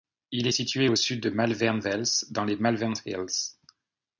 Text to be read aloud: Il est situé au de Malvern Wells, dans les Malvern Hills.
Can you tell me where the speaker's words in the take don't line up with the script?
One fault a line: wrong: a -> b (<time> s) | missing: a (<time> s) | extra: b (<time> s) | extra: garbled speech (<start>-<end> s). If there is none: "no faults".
extra: sud (0.9 s)